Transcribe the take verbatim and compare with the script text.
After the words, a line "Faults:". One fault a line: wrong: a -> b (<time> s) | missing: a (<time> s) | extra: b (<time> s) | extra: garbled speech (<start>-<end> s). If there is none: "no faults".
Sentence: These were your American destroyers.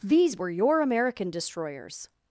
These were your American destroyers.
Faults:
no faults